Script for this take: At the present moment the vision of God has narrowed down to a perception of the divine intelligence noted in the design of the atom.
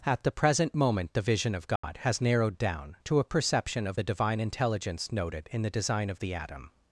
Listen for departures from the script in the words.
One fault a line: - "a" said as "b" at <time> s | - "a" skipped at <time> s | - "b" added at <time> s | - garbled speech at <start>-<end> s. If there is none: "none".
none